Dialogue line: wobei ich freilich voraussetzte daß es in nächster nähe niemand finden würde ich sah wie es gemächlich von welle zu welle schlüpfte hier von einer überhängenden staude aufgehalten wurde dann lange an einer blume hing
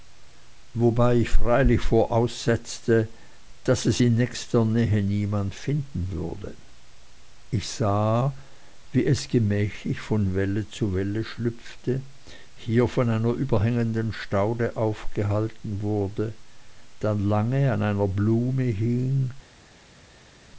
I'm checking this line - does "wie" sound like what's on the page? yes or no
yes